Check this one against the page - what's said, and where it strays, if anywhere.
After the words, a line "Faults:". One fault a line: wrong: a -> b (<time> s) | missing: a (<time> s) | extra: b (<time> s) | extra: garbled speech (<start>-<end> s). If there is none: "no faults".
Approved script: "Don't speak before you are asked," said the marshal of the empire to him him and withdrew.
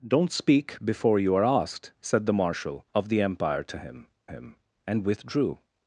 "Don't speak before you are asked," said the marshal of the empire to him him and withdrew.
Faults:
no faults